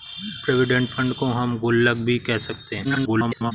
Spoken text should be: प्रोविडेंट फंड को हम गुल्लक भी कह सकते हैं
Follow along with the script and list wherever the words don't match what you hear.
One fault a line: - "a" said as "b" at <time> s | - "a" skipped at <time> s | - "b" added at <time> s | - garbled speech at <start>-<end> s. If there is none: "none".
- garbled speech at 2.8-3.5 s